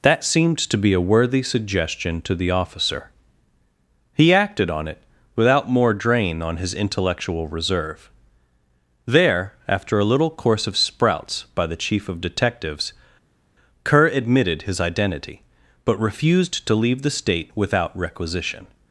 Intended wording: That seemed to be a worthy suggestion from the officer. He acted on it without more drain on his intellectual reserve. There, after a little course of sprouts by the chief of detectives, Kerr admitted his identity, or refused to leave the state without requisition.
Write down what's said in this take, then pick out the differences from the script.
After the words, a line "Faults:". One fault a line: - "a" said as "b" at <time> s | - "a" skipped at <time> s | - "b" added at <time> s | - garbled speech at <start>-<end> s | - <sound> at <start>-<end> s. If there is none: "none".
That seemed to be a worthy suggestion to the officer. He acted on it without more drain on his intellectual reserve. There, after a little course of sprouts by the chief of detectives, Kerr admitted his identity, but refused to leave the state without requisition.
Faults:
- "from" said as "to" at 2.2 s
- "or" said as "but" at 15.8 s